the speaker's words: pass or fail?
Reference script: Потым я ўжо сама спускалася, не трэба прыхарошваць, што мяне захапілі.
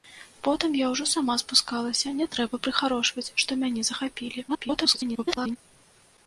fail